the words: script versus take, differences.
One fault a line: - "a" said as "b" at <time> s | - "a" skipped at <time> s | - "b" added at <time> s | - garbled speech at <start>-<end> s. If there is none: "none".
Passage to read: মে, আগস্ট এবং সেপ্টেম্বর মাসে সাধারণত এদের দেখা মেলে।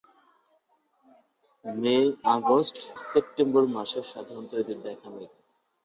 - "এবং" skipped at 2.8 s